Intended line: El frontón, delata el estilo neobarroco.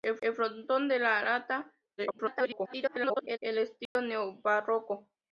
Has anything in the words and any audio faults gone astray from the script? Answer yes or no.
yes